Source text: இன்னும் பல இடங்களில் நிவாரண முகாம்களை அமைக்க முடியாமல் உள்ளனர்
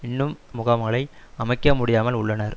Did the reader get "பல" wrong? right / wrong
wrong